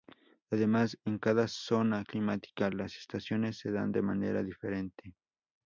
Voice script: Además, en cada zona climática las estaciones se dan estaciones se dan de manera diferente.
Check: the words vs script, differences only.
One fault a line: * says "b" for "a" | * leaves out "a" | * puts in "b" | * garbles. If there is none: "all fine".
* leaves out "estaciones se dan"